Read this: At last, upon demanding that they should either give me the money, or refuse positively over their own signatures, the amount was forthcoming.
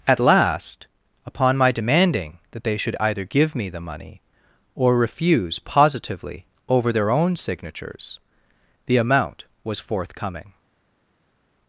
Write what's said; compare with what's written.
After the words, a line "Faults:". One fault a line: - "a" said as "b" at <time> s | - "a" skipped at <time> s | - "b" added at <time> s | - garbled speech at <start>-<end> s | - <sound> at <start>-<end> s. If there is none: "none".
At last, upon my demanding that they should either give me the money, or refuse positively over their own signatures, the amount was forthcoming.
Faults:
- "my" added at 1.6 s